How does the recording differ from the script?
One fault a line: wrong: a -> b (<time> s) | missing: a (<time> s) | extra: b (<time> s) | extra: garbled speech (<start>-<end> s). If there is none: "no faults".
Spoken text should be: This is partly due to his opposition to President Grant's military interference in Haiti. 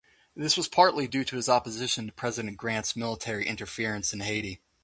wrong: is -> was (0.6 s)